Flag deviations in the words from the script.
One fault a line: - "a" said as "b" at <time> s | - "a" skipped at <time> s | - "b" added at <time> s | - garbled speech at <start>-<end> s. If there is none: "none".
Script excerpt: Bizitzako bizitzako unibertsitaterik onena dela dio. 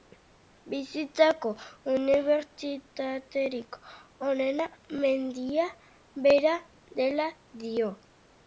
- "bizitzako" skipped at 1.5 s
- "mendia bera" added at 5.0 s